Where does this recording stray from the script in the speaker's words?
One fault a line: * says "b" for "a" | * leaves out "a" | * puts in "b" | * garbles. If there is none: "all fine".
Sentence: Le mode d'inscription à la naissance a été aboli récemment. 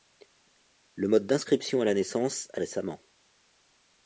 * leaves out "été aboli"